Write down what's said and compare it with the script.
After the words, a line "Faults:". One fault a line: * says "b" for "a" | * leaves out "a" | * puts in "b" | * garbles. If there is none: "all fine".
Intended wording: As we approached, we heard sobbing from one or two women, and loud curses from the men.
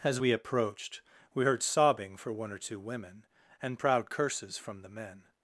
As we approached, we heard sobbing for one or two women, and proud curses from the men.
Faults:
* says "for" for "from"
* says "proud" for "loud"